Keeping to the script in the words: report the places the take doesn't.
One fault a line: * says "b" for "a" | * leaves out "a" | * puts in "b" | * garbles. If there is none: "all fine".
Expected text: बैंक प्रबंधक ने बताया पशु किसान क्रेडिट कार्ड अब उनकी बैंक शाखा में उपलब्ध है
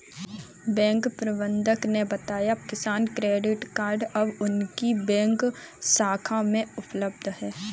* leaves out "पशु"